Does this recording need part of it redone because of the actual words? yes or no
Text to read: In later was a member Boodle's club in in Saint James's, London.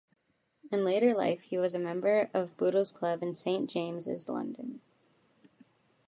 yes